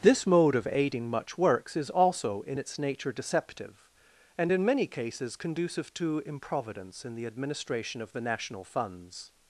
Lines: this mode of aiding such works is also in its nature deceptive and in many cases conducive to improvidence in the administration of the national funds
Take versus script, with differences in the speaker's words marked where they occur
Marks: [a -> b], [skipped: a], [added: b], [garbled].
this mode of aiding [such -> much] works is also in its nature deceptive and in many cases conducive to improvidence in the administration of the national funds